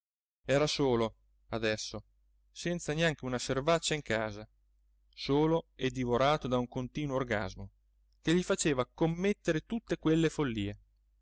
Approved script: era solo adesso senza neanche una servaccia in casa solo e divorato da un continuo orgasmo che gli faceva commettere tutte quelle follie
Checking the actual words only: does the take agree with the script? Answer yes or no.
yes